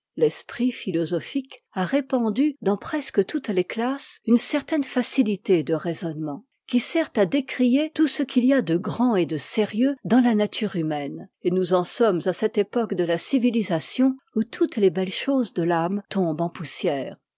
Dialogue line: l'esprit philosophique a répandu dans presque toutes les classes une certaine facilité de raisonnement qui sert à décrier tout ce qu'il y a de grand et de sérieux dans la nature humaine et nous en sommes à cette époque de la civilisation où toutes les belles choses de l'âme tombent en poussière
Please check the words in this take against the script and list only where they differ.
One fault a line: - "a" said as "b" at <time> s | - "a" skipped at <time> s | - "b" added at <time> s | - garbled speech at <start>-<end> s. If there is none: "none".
none